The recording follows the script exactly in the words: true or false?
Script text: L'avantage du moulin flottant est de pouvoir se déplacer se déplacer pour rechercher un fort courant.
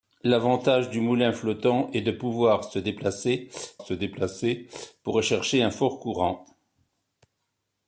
true